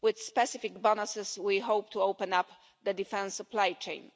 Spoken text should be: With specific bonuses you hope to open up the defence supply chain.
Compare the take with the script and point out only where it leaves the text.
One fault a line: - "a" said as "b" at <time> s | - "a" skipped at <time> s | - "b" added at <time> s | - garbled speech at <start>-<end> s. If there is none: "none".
- "you" said as "we" at 1.4 s